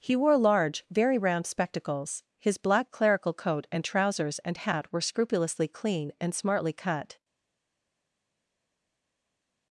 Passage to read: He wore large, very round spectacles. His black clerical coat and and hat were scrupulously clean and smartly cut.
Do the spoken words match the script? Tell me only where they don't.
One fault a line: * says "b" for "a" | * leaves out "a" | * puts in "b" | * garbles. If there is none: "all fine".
* puts in "trousers"